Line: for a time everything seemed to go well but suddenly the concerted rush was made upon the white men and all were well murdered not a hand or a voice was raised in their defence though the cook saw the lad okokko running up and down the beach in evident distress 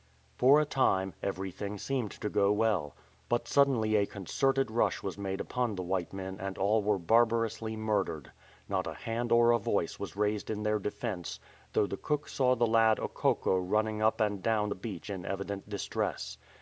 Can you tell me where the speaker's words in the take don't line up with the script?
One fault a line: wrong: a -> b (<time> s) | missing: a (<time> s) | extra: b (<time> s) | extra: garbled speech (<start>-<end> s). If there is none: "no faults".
wrong: the -> a (4.0 s)
wrong: well -> barbarously (7.0 s)